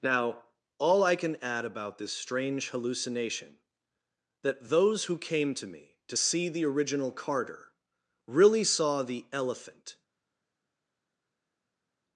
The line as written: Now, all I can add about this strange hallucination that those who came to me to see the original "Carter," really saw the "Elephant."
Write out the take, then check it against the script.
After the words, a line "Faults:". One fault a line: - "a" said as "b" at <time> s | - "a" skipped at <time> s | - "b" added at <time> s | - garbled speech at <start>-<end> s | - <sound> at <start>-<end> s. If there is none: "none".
Now, all I can add about this strange hallucination that those who came to me to see the original "Carter," really saw the "Elephant."
Faults:
none